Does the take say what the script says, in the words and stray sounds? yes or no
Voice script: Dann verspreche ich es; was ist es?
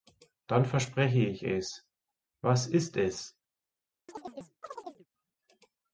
no